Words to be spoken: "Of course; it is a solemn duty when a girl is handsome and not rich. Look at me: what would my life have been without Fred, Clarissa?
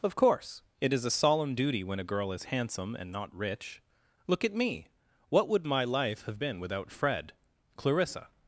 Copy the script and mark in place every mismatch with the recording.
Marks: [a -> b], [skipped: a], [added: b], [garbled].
"Of course; it is a solemn duty when a girl is handsome and not rich. Look at me: what would my life have been without Fred, Clarissa?